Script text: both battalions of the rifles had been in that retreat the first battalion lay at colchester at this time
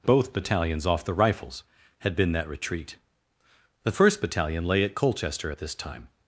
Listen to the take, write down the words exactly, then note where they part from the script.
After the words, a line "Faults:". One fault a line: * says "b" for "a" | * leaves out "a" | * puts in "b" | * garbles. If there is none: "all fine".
both battalions off the rifles had been that retreat the first battalion lay at colchester at this time
Faults:
* says "off" for "of"
* leaves out "in"